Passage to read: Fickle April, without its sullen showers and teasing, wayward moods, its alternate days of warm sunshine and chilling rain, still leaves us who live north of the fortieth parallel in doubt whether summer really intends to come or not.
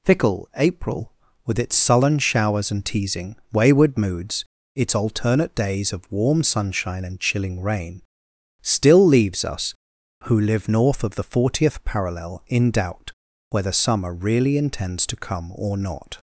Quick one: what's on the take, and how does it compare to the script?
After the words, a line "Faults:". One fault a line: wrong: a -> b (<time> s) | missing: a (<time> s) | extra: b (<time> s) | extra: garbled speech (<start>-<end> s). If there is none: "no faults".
Fickle April, with its sullen showers and teasing, wayward moods, its alternate days of warm sunshine and chilling rain, still leaves us who live north of the fortieth parallel in doubt whether summer really intends to come or not.
Faults:
wrong: without -> with (1.4 s)